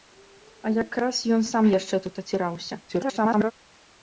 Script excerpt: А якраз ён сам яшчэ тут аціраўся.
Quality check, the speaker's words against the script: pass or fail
fail